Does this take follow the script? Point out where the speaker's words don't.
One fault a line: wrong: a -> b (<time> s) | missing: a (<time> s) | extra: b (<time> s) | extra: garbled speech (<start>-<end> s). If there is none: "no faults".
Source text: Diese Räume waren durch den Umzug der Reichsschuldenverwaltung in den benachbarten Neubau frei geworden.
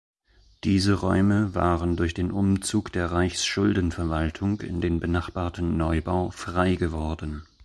no faults